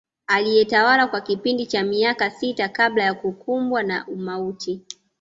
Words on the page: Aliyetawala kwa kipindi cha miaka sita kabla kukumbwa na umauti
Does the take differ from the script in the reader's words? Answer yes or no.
yes